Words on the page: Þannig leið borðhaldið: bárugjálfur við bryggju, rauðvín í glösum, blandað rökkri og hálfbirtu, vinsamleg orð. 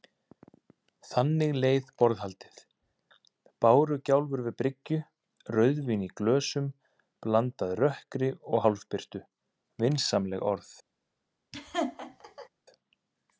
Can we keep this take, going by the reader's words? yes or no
yes